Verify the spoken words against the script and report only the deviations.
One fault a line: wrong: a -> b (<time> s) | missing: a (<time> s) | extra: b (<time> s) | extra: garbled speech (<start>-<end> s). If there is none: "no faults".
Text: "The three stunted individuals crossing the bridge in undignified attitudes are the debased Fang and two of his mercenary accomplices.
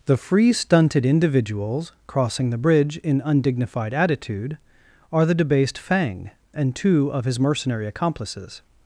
wrong: three -> free (0.2 s)
wrong: attitudes -> attitude (3.9 s)